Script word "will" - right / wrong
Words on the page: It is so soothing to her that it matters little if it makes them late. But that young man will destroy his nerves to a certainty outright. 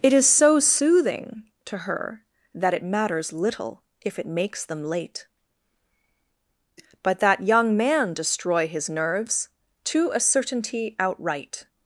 wrong